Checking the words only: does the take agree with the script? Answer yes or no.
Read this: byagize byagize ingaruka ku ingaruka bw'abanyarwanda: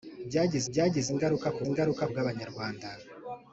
yes